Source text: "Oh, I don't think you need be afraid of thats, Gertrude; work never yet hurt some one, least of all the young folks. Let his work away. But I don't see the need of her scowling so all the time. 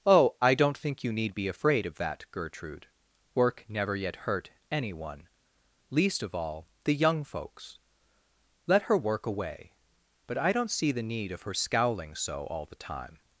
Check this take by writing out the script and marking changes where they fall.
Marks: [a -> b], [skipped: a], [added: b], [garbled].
"Oh, I don't think you need be afraid of [thats, -> that] Gertrude; work never yet hurt [some -> any] one, least of all the young folks. Let [his -> her] work away. But I don't see the need of her scowling so all the time.